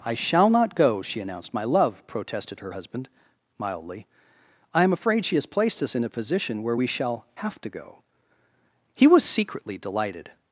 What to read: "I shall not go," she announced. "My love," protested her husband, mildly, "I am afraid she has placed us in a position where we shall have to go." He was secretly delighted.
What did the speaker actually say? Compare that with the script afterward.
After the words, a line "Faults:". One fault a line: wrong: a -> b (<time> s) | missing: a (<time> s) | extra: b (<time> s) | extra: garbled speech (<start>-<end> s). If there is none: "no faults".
"I shall not go," she announced. "My love," protested her husband, mildly, "I am afraid she has placed us in a position where we shall have to go." He was secretly delighted.
Faults:
no faults